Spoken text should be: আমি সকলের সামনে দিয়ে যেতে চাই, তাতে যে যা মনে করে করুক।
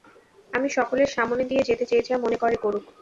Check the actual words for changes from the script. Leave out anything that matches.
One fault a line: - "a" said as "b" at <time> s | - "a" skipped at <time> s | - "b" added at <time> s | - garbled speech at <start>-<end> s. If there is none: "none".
- "চাই তাতে" skipped at 1.9 s